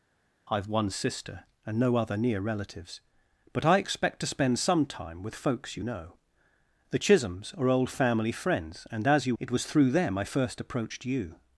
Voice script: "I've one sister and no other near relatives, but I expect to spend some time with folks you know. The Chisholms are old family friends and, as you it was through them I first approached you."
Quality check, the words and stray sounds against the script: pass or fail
pass